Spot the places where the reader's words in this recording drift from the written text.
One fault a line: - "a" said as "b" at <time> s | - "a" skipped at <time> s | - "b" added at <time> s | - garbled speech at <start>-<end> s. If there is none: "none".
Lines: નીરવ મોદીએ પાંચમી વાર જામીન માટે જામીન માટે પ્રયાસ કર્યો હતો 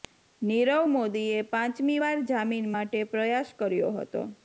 - "જામીન માટે" skipped at 3.0 s